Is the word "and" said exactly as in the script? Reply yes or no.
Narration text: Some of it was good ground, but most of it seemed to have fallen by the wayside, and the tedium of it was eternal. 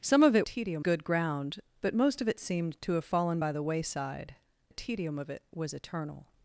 no